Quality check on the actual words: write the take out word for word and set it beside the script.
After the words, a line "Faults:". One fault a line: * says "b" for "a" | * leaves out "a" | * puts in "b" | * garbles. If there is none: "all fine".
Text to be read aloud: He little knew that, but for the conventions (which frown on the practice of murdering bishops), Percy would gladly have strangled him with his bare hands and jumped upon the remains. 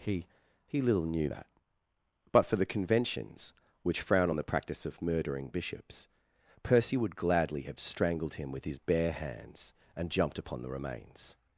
He he little knew that, but for the conventions (which frown on the practice of murdering bishops), Percy would gladly have strangled him with his bare hands and jumped upon the remains.
Faults:
* puts in "he"